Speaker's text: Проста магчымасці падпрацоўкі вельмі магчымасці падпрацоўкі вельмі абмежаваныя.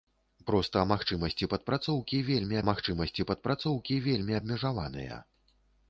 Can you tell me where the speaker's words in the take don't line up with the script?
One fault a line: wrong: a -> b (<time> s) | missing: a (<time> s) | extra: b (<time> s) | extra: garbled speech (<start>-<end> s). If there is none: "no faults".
no faults